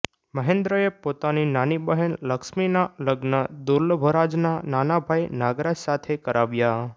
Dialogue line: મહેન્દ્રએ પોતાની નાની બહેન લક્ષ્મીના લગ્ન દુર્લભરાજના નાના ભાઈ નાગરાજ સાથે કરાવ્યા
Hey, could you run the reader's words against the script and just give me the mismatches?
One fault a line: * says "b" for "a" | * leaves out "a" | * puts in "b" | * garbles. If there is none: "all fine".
all fine